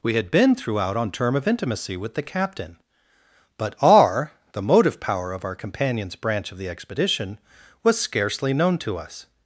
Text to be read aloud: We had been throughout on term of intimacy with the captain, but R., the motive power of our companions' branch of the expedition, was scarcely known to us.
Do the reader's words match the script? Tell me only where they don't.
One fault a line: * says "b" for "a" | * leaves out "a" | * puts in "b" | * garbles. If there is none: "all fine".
all fine